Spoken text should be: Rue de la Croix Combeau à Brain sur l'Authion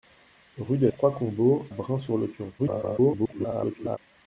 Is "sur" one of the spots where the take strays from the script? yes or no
no